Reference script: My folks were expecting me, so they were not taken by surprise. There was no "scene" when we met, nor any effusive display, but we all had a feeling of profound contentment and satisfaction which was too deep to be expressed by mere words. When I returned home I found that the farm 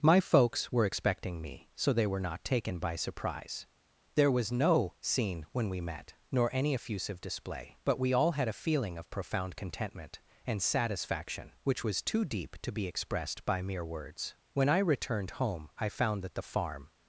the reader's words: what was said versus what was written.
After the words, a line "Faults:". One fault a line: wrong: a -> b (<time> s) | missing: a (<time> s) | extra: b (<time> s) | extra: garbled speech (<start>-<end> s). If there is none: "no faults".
My folks were expecting me, so they were not taken by surprise. There was no "scene" when we met, nor any effusive display, but we all had a feeling of profound contentment and satisfaction which was too deep to be expressed by mere words. When I returned home I found that the farm
Faults:
no faults